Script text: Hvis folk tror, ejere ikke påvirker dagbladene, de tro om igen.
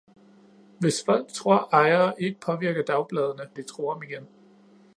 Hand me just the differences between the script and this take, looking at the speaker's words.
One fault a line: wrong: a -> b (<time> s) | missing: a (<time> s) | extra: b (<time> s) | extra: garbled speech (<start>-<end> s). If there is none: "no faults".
no faults